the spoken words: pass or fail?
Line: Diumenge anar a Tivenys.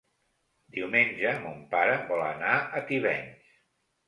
fail